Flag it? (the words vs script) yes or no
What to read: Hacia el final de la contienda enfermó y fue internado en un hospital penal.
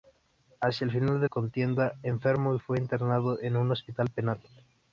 yes